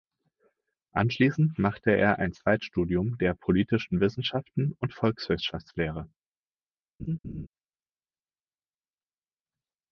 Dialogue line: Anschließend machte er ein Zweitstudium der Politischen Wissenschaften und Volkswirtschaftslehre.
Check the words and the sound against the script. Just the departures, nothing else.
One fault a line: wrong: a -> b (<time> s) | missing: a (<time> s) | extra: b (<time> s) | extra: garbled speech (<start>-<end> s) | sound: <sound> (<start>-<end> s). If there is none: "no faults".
sound: laugh (7.0-7.5 s)